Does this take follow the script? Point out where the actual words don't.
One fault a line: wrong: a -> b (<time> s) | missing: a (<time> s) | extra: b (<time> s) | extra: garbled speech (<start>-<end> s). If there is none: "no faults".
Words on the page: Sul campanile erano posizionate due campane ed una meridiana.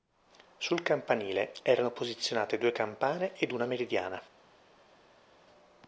no faults